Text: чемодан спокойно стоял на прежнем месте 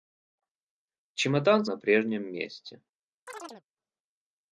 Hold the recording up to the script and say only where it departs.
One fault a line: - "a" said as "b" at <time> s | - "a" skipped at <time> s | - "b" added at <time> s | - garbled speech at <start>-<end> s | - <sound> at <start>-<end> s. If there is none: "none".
- "спокойно стоял" skipped at 1.6 s
- chirp at 3.3-3.6 s